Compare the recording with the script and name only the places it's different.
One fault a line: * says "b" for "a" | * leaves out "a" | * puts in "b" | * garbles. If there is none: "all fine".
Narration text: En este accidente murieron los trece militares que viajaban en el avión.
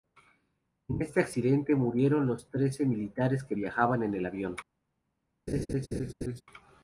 all fine